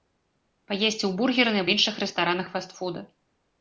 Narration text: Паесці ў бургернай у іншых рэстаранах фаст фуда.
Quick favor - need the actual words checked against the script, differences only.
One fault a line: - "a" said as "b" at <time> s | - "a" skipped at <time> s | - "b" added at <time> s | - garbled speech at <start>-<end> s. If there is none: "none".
none